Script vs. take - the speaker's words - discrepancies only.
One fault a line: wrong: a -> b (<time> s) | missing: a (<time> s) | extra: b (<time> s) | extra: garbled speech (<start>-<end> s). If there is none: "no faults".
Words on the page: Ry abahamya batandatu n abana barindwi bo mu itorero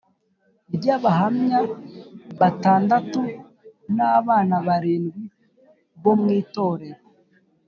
no faults